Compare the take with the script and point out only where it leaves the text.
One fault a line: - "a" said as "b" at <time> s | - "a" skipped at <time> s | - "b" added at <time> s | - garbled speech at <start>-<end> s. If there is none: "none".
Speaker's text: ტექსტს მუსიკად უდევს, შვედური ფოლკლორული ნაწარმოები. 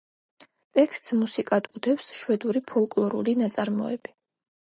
none